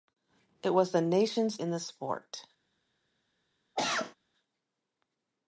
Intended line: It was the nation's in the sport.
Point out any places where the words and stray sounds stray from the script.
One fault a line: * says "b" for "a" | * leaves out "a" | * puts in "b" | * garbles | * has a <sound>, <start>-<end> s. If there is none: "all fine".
* has a cough, 3.8-4.2 s